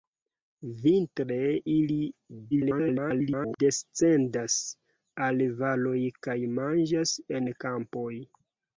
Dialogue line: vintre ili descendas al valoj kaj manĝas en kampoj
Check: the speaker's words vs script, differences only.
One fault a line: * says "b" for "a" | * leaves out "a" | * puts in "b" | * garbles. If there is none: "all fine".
* garbles